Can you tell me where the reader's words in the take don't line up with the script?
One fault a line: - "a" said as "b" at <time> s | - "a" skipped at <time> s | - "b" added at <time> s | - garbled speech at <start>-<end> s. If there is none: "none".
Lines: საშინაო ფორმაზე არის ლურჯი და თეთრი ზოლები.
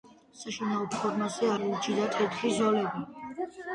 - "არის" skipped at 1.5 s